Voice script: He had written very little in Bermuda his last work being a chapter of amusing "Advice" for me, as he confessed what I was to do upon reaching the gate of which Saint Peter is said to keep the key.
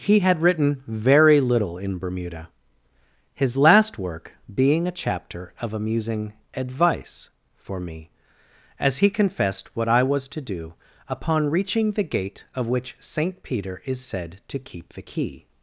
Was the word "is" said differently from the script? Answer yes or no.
no